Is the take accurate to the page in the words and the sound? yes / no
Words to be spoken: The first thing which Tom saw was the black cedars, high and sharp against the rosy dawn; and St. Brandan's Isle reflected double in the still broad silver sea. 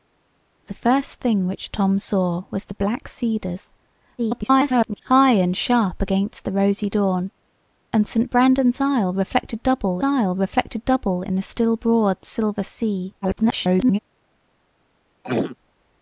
no